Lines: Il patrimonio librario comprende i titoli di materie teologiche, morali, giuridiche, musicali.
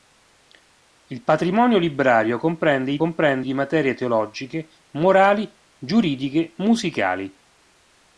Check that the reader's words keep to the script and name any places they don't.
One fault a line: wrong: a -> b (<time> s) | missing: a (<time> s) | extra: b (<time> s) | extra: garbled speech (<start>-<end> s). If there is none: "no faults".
wrong: titoli -> comprende (3.0 s)